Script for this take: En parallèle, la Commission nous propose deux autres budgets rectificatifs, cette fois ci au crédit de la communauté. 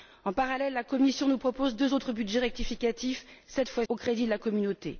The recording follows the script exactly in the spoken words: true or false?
false